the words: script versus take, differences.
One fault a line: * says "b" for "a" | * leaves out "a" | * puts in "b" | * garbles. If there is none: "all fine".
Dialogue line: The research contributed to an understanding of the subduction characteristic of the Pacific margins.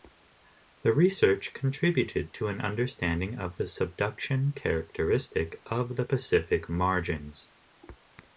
all fine